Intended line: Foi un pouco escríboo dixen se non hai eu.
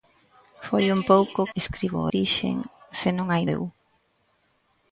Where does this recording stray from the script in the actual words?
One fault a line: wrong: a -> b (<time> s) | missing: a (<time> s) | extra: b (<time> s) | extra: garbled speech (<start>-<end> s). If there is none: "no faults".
no faults